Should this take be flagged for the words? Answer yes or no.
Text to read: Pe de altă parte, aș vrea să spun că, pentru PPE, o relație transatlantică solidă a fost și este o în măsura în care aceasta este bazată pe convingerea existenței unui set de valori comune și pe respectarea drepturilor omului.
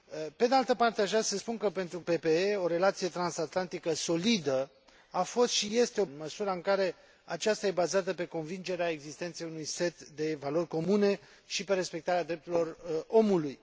no